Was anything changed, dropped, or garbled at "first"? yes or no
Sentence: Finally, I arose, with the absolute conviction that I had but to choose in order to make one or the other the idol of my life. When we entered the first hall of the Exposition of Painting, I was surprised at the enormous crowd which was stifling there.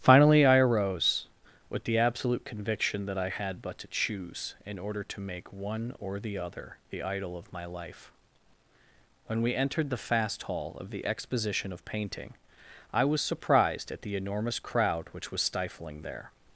yes